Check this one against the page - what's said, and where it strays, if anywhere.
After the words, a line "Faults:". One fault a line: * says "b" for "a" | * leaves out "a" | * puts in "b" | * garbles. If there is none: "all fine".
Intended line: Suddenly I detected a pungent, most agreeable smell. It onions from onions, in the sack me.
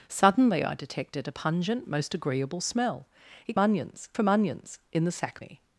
Suddenly I detected a pungent, most agreeable smell. It onions from onions, in the sack me.
Faults:
all fine